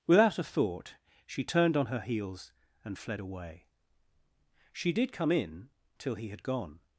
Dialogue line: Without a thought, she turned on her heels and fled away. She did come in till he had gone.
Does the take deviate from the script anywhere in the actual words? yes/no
no